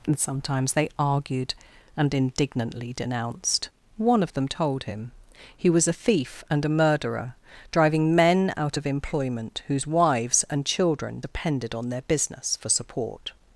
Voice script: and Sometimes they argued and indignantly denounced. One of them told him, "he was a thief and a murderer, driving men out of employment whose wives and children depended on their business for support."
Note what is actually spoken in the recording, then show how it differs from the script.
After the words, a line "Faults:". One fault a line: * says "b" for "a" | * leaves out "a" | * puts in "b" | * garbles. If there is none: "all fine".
and Sometimes they argued and indignantly denounced. One of them told him, "he was a thief and a murderer, driving men out of employment whose wives and children depended on their business for support."
Faults:
all fine